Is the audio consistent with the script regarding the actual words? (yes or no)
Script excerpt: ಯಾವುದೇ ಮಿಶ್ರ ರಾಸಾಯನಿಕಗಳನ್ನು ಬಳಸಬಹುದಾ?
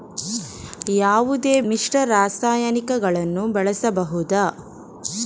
yes